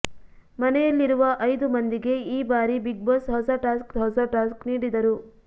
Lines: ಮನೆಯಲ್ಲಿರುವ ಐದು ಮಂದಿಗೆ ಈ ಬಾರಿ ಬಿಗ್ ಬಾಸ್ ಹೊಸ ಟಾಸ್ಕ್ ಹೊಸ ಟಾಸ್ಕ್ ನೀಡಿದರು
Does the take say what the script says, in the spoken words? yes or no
yes